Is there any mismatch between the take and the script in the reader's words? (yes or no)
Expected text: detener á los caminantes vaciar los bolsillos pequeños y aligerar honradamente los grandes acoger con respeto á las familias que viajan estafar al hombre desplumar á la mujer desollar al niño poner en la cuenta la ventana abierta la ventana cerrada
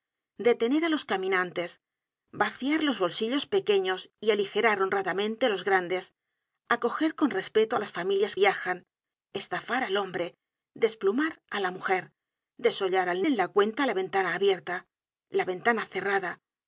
yes